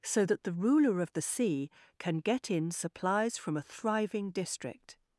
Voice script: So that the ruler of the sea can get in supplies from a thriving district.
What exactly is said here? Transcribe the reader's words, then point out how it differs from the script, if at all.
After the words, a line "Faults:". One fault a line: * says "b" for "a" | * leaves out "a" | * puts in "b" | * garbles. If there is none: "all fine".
So that the ruler of the sea can get in supplies from a thriving district.
Faults:
all fine